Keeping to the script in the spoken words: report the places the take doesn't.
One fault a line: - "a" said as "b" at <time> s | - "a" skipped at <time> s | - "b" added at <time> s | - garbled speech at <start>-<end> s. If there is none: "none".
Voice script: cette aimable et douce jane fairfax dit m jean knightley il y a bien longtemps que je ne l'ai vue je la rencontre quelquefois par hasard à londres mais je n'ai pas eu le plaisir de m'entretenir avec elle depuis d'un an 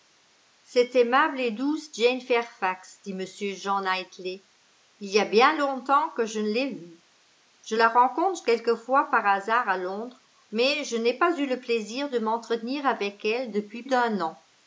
none